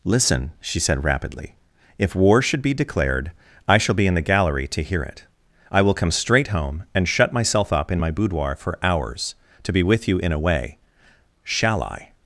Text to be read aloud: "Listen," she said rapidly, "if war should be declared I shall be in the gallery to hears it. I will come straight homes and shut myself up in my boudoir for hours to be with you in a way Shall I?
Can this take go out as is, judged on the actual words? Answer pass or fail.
fail